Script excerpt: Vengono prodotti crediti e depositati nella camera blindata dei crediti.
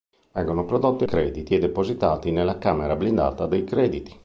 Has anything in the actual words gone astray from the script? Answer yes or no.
no